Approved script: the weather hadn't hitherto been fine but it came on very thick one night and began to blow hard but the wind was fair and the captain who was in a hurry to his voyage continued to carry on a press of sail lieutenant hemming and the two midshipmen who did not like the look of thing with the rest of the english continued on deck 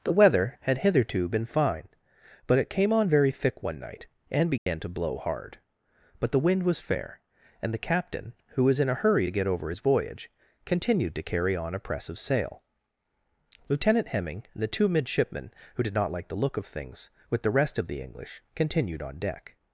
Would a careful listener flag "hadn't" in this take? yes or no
yes